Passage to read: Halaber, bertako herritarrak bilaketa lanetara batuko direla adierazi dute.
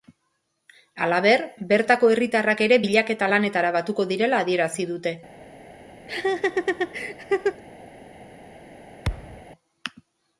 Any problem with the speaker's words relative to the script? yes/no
yes